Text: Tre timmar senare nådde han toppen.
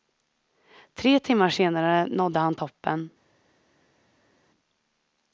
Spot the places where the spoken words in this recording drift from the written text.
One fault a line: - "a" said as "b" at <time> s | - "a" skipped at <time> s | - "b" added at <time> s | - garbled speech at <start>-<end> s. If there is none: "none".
none